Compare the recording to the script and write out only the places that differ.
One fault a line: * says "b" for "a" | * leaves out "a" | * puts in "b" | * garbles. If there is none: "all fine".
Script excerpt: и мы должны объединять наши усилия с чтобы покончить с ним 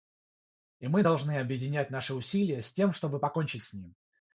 * puts in "тем"